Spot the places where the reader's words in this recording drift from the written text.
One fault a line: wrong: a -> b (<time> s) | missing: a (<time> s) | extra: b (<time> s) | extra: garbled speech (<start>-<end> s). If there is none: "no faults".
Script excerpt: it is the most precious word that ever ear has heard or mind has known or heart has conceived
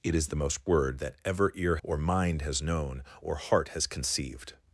missing: precious (0.7 s)
missing: has heard (1.8 s)